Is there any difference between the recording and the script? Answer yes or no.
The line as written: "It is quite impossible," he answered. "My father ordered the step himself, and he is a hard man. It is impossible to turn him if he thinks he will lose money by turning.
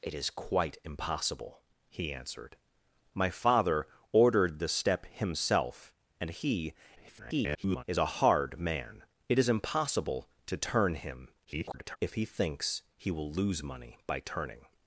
yes